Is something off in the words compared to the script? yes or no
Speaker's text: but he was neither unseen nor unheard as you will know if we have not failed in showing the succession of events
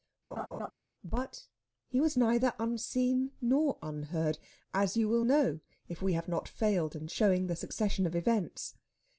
no